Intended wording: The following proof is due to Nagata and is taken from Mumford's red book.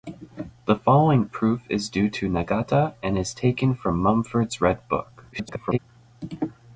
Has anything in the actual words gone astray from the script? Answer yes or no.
yes